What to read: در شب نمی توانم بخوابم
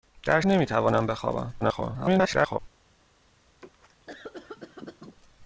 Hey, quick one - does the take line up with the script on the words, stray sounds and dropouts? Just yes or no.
no